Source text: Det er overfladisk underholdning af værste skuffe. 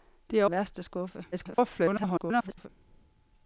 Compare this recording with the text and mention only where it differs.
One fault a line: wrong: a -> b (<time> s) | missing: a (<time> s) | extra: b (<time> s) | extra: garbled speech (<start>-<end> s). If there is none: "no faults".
missing: overfladisk underholdning (0.5 s)
extra: garbled speech (1.3-2.7 s)